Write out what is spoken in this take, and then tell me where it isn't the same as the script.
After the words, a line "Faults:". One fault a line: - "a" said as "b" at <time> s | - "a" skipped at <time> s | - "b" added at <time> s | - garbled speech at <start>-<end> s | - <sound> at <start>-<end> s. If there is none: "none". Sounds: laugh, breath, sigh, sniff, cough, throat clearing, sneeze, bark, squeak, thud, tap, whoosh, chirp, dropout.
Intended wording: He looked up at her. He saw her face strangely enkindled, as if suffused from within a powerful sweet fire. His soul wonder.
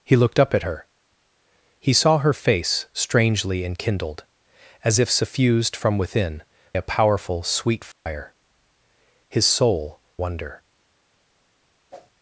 He looked up at her. He saw her face strangely enkindled, as if suffused from within a powerful sweet fire. His soul wonder.
Faults:
- dropout at 7.9-8.1 s
- whoosh at 11.9-12.1 s